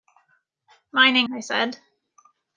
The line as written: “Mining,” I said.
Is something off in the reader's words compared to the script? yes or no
no